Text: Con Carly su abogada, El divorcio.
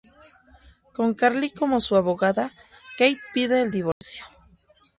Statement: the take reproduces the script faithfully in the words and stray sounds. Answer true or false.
false